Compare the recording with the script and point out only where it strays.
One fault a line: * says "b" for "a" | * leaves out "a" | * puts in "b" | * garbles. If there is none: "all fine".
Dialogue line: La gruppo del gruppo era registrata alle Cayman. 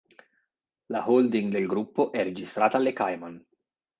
* says "holding" for "gruppo"
* says "è" for "era"